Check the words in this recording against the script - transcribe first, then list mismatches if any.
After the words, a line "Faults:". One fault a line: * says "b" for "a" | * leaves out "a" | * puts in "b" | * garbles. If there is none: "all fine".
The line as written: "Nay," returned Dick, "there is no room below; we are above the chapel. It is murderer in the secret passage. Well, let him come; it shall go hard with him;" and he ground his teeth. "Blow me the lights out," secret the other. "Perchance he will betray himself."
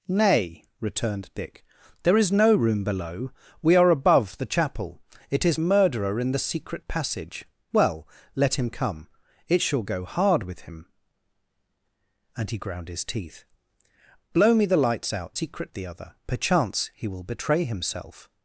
"Nay," returned Dick, "there is no room below; we are above the chapel. It is murderer in the secret passage. Well, let him come; it shall go hard with him;" and he ground his teeth. "Blow me the lights out," secret the other. "Perchance he will betray himself."
Faults:
all fine